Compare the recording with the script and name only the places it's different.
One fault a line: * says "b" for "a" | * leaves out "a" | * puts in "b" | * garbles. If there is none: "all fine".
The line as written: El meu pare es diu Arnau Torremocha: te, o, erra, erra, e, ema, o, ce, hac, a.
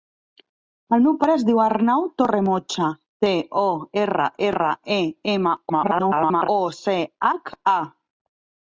* garbles